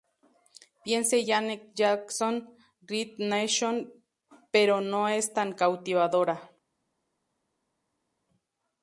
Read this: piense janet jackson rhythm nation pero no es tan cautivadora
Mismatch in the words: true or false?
false